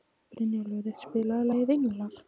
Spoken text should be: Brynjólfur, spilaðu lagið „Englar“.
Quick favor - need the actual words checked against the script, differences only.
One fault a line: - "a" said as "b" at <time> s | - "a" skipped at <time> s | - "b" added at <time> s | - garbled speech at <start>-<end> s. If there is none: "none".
none